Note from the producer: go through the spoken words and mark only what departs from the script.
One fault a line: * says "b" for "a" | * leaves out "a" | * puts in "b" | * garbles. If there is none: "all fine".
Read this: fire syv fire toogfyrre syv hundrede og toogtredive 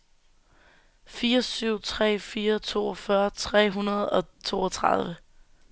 * puts in "tre"
* says "tre" for "syv"